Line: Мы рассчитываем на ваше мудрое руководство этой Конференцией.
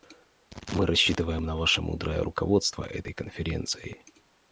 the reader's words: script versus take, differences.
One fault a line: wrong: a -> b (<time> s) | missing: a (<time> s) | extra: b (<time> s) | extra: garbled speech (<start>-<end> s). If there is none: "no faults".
no faults